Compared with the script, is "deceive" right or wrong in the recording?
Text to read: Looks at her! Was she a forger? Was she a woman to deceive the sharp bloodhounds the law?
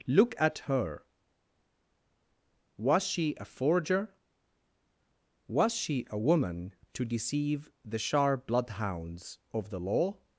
right